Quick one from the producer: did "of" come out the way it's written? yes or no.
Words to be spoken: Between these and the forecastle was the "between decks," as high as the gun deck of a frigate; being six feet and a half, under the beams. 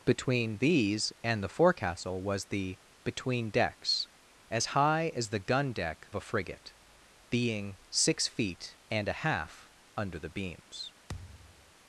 no